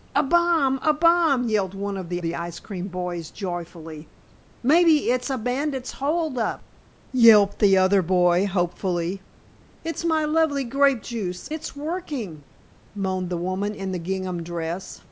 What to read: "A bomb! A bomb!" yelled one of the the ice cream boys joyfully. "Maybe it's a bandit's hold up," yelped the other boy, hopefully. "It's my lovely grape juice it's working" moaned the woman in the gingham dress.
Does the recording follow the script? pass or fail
pass